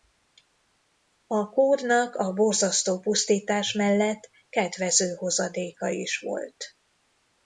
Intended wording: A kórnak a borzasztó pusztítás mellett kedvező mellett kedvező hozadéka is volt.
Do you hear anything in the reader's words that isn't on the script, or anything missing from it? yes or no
yes